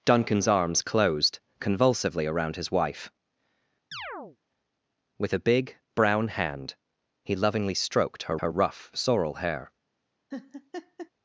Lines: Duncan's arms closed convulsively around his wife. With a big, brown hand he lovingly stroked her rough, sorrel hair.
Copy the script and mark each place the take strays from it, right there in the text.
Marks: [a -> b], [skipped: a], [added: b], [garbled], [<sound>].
Duncan's arms closed convulsively around his wife. [chirp] With a big, brown hand he lovingly stroked her [added: her] rough, sorrel hair. [laugh]